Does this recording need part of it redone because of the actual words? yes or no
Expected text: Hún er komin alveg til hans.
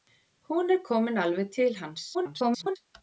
yes